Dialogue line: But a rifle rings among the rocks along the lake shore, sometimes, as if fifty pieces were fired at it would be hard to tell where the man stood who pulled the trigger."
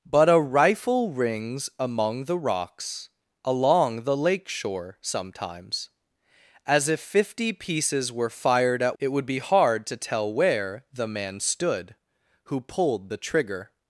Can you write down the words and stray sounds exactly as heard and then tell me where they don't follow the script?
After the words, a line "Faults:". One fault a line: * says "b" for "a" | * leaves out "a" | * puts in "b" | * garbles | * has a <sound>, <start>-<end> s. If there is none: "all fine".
But a rifle rings among the rocks along the lake shore, sometimes, as if fifty pieces were fired at it would be hard to tell where the man stood who pulled the trigger."
Faults:
all fine